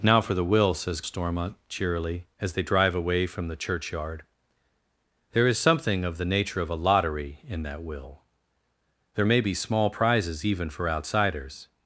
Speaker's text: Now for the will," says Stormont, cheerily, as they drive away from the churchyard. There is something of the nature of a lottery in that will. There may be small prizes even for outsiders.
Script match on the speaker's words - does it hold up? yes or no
yes